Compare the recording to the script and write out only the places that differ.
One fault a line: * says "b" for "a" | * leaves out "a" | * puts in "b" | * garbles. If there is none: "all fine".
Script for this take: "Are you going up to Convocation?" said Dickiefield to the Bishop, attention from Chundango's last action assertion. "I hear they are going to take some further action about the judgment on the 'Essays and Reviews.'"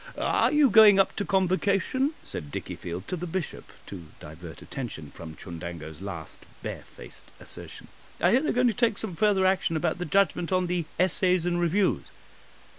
* puts in "to divert"
* says "barefaced" for "action"